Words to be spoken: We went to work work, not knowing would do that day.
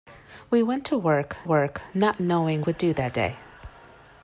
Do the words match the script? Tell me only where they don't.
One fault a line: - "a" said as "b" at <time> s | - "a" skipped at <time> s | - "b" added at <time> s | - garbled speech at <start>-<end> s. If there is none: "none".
none